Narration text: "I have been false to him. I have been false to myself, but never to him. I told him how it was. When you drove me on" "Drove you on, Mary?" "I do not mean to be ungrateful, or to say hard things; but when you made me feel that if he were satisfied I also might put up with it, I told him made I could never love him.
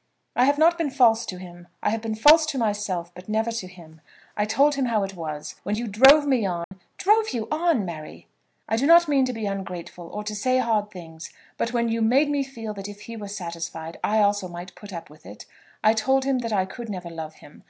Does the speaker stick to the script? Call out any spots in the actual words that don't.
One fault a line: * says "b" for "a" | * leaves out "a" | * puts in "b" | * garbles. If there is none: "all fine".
* puts in "not"
* says "that" for "made"